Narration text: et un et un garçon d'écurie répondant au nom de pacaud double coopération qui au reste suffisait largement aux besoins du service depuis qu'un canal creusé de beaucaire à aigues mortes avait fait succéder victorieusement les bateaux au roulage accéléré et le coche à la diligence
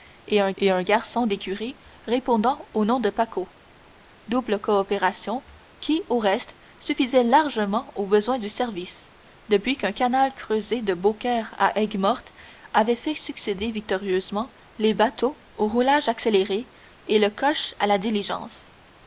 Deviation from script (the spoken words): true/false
false